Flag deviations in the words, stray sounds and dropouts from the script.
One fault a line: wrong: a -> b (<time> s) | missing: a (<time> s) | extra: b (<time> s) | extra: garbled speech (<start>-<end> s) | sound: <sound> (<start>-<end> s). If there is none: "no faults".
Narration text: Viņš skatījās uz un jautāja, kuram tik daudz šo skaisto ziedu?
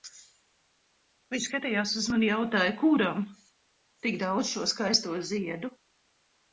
no faults